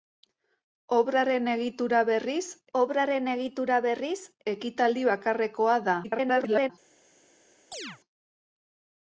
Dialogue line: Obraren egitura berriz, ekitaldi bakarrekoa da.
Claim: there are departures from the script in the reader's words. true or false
true